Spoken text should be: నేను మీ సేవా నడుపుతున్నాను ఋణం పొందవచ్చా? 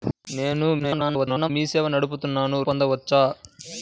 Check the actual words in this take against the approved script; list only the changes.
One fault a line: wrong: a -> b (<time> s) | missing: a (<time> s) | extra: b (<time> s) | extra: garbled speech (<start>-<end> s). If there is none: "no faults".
extra: garbled speech (0.8-1.5 s)
missing: ఋణం (2.6 s)